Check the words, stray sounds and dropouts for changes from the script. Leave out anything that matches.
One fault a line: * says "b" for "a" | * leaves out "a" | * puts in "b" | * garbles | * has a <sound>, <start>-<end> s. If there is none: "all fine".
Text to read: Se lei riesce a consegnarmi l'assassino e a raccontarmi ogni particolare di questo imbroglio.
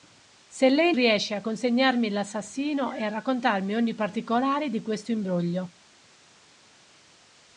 all fine